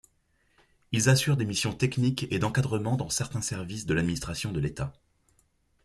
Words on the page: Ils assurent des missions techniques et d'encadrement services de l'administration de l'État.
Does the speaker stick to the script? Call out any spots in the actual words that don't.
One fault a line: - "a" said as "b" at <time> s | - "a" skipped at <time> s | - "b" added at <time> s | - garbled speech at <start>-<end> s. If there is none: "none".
- "dans certains" added at 3.0 s